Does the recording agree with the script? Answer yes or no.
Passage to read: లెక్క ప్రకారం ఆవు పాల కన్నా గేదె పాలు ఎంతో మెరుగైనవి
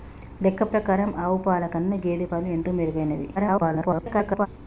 no